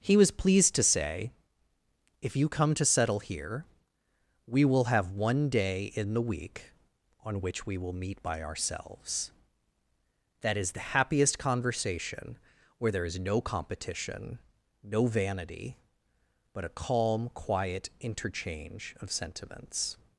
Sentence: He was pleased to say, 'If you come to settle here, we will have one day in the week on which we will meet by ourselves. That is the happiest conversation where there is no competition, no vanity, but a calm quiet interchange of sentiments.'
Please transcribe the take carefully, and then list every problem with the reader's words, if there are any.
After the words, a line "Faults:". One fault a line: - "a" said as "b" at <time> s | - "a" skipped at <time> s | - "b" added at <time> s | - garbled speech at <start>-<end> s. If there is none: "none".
He was pleased to say, 'If you come to settle here, we will have one day in the week on which we will meet by ourselves. That is the happiest conversation where there is no competition, no vanity, but a calm quiet interchange of sentiments.'
Faults:
none